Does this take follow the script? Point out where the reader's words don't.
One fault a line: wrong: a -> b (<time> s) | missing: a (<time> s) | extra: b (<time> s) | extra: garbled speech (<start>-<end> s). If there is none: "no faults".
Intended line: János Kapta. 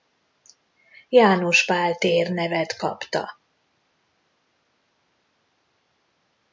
extra: Pál tér nevet (1.6 s)